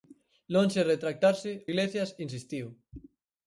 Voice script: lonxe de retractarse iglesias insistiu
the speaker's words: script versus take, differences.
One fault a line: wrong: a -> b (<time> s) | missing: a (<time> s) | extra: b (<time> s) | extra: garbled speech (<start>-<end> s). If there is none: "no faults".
no faults